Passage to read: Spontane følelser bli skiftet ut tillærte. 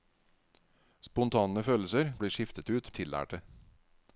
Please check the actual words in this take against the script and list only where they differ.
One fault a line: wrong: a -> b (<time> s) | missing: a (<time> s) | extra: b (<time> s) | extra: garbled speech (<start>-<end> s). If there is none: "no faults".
no faults